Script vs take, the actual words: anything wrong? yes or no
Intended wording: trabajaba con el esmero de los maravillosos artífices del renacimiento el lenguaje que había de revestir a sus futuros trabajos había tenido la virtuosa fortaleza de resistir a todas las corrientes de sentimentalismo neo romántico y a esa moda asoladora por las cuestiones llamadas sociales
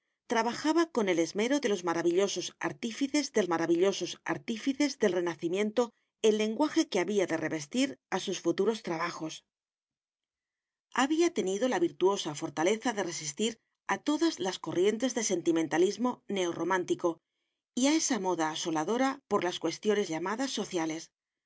yes